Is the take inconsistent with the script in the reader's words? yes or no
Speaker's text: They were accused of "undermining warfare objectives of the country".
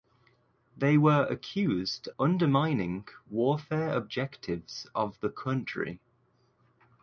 yes